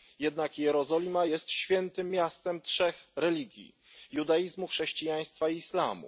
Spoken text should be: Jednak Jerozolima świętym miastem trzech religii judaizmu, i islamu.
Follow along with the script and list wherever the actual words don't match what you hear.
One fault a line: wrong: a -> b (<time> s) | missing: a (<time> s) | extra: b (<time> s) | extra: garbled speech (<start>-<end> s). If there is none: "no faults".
extra: jest (1.2 s)
extra: chrześcijaństwa (4.7 s)